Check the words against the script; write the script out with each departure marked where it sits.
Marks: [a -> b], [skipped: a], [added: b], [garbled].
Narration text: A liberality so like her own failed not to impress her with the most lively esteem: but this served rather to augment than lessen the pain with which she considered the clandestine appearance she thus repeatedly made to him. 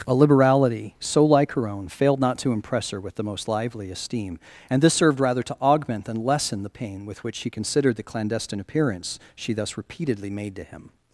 A liberality so like her own failed not to impress her with the most lively esteem: [but -> and] this served rather to augment than lessen the pain with which she considered the clandestine appearance she thus repeatedly made to him.